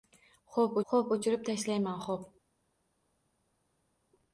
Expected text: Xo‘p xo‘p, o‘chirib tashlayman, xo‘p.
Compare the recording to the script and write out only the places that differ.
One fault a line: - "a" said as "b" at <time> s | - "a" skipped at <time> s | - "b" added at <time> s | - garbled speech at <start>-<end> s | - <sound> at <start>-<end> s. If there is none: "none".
none